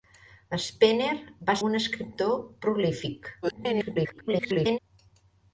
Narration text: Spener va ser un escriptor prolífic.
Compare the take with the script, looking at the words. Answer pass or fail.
fail